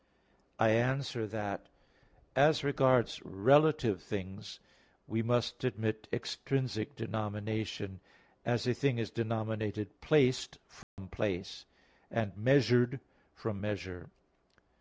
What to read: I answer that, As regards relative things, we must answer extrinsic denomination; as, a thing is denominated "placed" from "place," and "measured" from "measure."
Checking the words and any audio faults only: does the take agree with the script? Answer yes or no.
no